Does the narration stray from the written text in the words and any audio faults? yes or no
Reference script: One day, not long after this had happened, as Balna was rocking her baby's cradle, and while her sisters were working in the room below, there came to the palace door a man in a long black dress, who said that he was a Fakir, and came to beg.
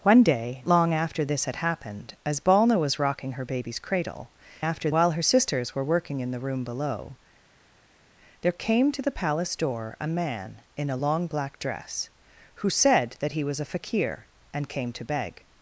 yes